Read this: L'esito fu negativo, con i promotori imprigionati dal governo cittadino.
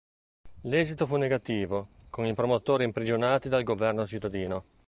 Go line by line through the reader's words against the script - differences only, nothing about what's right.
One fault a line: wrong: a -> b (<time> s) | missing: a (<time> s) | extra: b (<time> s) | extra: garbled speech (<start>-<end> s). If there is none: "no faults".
no faults